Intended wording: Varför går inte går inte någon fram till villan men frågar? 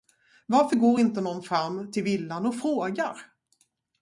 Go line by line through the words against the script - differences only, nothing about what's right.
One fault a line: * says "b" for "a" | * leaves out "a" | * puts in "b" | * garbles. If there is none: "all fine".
* leaves out "går inte"
* says "och" for "men"